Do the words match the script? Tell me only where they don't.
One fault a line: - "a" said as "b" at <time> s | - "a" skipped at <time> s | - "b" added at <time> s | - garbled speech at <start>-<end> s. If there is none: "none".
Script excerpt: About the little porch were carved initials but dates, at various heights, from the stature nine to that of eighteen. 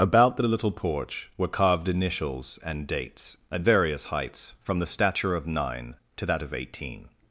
- "but" said as "and" at 2.6 s
- "of" added at 5.3 s